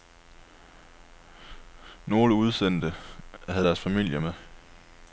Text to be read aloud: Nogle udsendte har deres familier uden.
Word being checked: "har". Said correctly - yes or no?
no